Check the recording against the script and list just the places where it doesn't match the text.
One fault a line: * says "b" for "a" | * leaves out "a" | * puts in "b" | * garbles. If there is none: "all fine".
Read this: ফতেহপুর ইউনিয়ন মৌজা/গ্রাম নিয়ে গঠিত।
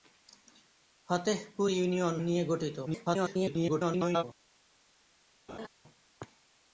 * leaves out "মৌজা/গ্রাম"
* garbles